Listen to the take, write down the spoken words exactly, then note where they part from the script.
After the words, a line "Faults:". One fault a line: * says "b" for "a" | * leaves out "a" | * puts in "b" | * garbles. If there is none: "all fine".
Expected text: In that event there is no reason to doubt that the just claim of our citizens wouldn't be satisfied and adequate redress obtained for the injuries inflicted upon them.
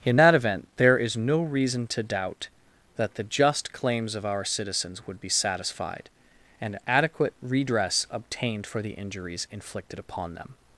In that event there is no reason to doubt that the just claims of our citizens would be satisfied and adequate redress obtained for the injuries inflicted upon them.
Faults:
* says "claims" for "claim"
* says "would" for "wouldn't"